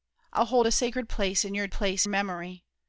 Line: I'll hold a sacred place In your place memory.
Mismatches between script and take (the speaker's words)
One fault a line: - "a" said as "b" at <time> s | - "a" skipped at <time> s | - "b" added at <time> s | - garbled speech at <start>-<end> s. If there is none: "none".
none